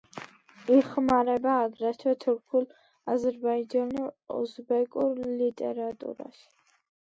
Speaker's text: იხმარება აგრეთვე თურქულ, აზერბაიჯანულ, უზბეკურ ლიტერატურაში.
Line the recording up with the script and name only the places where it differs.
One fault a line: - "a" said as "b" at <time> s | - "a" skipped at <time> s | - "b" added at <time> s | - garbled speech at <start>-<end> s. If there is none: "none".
none